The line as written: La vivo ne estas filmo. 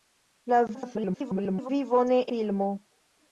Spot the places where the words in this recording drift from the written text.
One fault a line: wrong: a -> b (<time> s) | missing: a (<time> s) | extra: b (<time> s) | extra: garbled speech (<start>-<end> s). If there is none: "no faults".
extra: garbled speech (0.7-1.7 s)
missing: estas (2.2 s)